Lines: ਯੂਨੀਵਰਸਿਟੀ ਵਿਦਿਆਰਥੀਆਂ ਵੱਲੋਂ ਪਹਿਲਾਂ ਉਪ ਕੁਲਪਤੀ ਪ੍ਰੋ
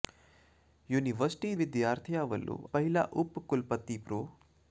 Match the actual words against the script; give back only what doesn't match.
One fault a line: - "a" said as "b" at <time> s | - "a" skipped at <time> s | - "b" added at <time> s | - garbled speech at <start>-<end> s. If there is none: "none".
none